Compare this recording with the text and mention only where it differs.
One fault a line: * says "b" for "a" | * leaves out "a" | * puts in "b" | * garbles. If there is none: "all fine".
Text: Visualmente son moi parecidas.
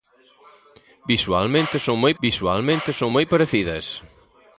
* puts in "visualmente son moi"